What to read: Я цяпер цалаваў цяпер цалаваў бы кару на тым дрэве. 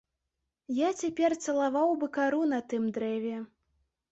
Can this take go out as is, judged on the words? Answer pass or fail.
fail